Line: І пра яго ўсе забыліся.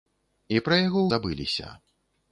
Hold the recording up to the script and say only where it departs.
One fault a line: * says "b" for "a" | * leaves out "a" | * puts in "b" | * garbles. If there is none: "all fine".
* leaves out "ўсе"